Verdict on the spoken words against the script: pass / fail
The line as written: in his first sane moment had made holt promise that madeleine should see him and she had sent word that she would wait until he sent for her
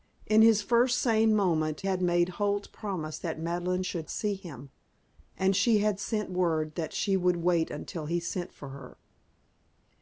pass